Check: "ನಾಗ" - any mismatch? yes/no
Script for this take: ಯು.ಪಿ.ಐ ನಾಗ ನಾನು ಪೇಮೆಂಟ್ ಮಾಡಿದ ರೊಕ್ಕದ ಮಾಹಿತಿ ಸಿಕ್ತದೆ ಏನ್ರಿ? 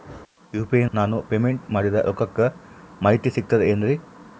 yes